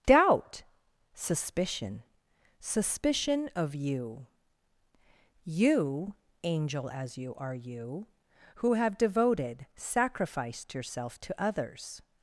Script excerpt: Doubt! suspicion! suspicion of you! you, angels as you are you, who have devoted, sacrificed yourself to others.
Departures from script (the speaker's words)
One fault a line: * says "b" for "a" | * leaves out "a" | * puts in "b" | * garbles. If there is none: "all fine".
* says "angel" for "angels"